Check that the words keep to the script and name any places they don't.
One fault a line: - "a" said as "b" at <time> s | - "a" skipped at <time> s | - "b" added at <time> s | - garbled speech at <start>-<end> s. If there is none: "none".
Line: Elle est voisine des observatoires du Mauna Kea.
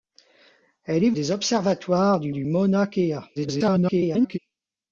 - "voisine" skipped at 1.1 s
- "du" added at 2.3 s
- garbled speech at 3.4-4.4 s